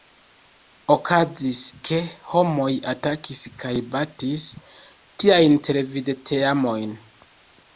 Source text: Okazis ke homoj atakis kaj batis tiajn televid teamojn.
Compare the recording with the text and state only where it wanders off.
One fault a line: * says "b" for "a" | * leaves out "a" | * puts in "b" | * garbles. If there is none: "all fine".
all fine